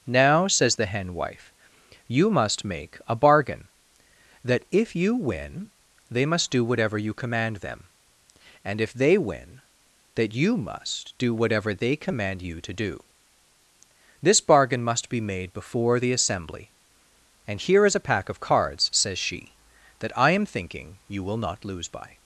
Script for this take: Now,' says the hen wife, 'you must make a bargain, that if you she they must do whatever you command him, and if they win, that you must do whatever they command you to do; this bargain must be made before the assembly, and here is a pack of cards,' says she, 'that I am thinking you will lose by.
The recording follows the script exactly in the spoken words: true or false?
false